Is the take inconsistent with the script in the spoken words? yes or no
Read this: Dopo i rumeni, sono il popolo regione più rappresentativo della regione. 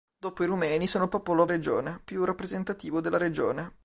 no